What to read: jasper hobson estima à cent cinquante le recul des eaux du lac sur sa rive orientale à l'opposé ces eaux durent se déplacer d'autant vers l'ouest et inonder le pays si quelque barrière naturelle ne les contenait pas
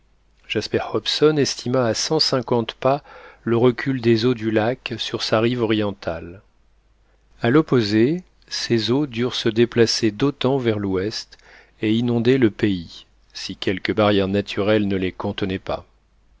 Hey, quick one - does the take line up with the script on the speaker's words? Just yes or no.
no